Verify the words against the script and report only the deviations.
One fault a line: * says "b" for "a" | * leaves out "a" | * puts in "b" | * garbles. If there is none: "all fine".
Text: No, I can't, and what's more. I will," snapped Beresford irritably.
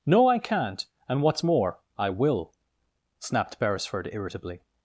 all fine